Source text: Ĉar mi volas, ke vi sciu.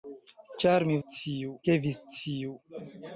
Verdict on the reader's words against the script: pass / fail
fail